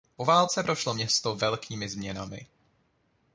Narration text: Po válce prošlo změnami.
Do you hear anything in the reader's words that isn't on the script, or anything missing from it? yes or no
yes